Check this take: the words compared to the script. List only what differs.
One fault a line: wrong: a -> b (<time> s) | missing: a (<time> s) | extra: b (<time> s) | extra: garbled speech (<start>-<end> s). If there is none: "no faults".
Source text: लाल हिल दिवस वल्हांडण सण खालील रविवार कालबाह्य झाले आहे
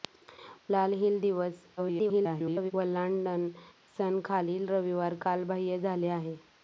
extra: garbled speech (1.8-2.7 s)